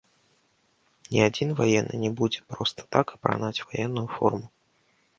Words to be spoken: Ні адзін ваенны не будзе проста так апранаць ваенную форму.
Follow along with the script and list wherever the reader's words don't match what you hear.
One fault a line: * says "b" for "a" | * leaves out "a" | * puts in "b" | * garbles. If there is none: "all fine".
all fine